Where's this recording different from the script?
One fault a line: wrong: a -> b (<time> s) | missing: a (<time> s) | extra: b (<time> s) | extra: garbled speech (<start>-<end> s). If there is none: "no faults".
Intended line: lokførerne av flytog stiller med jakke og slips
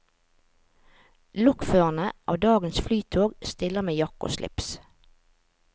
extra: dagens (2.5 s)